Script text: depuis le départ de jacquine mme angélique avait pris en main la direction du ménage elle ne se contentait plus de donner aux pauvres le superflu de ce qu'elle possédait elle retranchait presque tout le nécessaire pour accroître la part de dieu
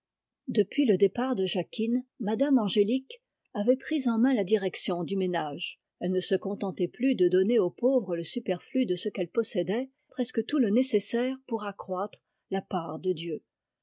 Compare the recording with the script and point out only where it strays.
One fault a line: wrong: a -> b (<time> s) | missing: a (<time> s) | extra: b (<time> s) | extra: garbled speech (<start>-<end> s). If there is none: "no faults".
missing: elle retranchait (9.9 s)